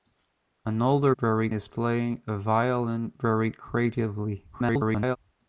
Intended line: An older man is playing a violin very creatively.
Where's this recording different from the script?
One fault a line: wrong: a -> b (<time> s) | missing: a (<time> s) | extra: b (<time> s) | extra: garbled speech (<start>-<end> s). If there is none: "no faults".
wrong: man -> very (1.2 s)
extra: garbled speech (4.5-5.2 s)